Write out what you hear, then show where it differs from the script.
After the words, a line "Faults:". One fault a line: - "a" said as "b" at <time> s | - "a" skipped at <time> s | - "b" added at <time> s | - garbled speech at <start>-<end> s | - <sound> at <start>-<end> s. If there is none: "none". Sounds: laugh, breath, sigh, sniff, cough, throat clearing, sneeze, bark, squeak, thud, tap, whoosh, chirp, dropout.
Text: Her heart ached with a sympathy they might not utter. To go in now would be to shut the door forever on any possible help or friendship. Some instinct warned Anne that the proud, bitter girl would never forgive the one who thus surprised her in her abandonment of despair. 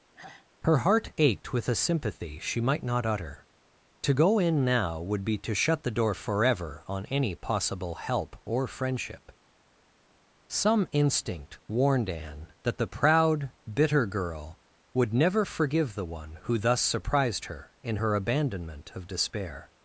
Her heart ached with a sympathy she might not utter. To go in now would be to shut the door forever on any possible help or friendship. Some instinct warned Anne that the proud, bitter girl would never forgive the one who thus surprised her in her abandonment of despair.
Faults:
- sigh at 0.1-0.5 s
- "they" said as "she" at 2.4 s